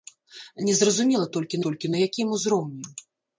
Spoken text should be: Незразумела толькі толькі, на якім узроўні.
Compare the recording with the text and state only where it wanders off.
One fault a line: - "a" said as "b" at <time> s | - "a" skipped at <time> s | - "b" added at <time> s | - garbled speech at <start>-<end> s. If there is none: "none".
none